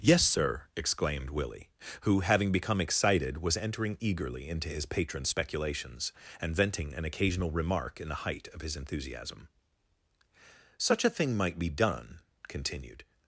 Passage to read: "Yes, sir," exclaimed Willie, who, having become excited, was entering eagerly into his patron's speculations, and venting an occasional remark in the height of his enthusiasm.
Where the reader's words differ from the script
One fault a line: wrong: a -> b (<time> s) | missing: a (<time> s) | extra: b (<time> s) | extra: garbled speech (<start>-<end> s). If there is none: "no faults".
extra: Such a thing might be done continued (10.8 s)